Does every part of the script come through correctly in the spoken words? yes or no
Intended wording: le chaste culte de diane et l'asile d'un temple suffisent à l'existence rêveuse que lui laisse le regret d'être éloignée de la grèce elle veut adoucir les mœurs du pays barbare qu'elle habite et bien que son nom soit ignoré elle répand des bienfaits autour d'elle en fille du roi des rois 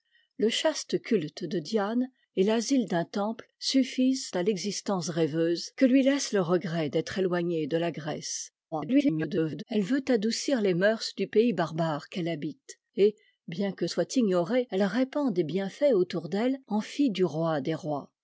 no